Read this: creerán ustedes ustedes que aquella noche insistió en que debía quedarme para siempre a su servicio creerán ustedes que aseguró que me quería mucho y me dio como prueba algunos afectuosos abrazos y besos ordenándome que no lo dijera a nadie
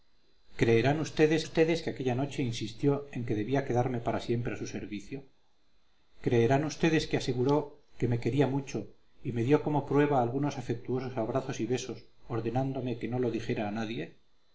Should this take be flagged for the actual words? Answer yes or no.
no